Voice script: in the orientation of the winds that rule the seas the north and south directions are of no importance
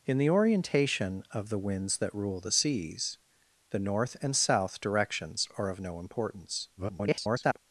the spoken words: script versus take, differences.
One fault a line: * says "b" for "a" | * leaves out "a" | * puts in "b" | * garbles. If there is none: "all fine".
* garbles